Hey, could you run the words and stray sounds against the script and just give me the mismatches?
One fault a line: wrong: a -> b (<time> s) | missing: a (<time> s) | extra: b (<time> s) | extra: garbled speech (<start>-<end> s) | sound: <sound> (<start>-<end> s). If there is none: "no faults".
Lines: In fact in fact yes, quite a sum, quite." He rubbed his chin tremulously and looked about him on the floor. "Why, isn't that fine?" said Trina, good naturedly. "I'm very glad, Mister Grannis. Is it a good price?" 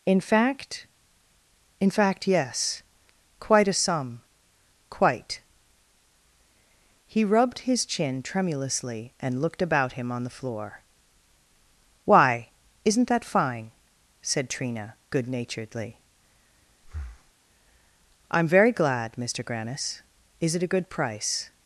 sound: breath (16.8-17.3 s)